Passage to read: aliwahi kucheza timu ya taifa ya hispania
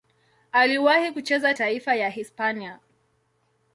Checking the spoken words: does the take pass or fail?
fail